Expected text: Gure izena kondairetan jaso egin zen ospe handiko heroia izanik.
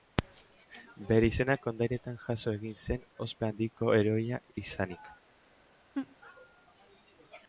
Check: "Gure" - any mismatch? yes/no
yes